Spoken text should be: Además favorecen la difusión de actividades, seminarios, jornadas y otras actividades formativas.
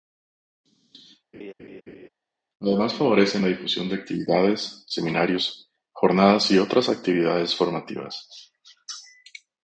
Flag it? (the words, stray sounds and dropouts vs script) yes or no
yes